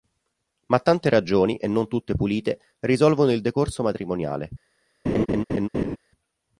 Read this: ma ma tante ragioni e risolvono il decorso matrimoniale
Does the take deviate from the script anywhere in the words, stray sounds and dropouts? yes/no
yes